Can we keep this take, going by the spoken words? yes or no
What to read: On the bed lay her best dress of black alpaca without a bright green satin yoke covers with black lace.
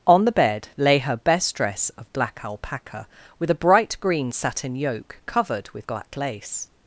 no